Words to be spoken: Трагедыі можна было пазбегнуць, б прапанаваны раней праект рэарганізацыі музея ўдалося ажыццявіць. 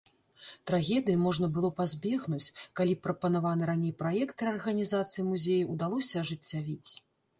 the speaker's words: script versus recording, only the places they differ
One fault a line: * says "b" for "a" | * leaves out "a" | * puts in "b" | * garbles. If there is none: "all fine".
* puts in "калі"